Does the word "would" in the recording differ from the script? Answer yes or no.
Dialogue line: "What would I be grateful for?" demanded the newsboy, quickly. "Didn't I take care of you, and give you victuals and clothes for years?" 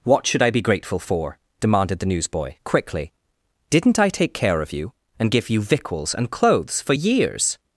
yes